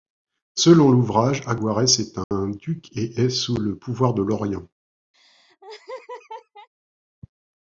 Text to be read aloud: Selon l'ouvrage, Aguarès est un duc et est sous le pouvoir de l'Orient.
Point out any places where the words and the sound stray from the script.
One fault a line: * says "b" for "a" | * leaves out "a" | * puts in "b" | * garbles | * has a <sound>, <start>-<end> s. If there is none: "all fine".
* has a dropout, 2.2-2.3 s
* has a laugh, 5.1-6.7 s